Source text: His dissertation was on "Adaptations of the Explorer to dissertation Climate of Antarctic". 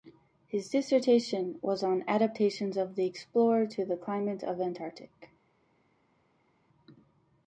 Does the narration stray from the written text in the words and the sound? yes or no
yes